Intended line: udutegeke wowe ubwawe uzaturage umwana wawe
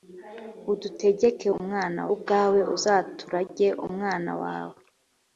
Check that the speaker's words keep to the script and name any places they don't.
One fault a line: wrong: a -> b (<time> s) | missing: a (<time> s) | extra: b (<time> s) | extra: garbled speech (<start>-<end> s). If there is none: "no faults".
wrong: wowe -> umwana (1.6 s)